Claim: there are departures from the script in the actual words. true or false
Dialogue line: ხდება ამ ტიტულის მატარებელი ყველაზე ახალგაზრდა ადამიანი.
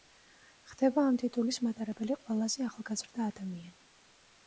false